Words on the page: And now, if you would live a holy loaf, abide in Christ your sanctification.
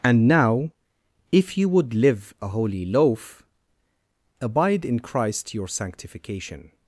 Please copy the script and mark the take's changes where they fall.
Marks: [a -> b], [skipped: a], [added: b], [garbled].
And now, if you would live a holy loaf, abide in Christ your sanctification.